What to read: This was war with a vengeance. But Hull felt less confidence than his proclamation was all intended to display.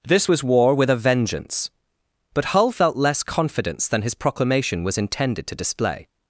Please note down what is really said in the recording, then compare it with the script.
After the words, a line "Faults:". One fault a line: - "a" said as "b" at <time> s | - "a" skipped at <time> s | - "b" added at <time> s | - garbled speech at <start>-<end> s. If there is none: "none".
This was war with a vengeance. But Hull felt less confidence than his proclamation was intended to display.
Faults:
- "all" skipped at 5.0 s